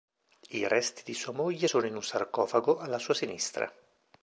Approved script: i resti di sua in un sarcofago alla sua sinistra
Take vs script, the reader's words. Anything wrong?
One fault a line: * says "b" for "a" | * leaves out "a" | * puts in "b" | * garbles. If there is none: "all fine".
* puts in "moglie sono"